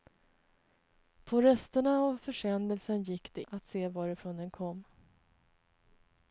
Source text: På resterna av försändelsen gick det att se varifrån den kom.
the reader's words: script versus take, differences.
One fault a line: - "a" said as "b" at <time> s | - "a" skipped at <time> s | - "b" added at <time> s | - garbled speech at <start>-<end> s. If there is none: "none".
none